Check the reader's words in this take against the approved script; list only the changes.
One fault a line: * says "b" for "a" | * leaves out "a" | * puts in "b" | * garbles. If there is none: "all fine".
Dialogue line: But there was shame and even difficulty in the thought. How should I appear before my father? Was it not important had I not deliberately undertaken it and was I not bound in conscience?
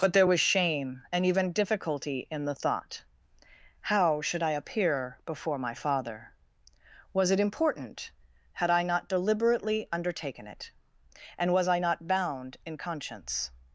* leaves out "not"